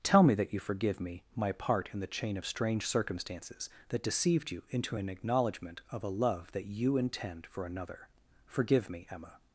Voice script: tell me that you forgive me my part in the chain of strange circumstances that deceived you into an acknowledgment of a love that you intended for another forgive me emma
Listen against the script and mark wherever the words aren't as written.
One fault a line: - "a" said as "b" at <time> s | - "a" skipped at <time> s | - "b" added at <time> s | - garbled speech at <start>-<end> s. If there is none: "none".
- "intended" said as "intend" at 7.0 s